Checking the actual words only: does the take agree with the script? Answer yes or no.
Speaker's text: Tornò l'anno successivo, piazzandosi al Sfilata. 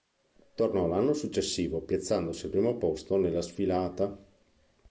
no